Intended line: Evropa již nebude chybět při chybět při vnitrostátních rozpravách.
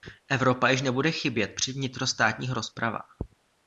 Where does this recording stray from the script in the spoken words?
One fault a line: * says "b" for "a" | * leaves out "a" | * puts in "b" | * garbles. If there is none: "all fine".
* leaves out "chybět při"